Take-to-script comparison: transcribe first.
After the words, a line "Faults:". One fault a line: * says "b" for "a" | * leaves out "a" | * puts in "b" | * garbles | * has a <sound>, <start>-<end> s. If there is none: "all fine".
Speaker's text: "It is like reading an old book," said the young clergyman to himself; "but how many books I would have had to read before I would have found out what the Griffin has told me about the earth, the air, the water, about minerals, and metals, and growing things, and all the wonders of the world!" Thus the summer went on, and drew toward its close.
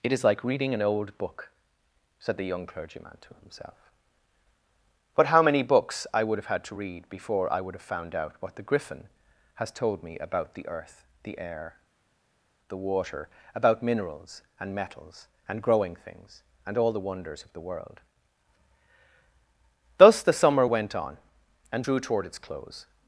"It is like reading an old book," said the young clergyman to himself; "but how many books I would have had to read before I would have found out what the Griffin has told me about the earth, the air, the water, about minerals, and metals, and growing things, and all the wonders of the world!" Thus the summer went on, and drew toward its close.
Faults:
all fine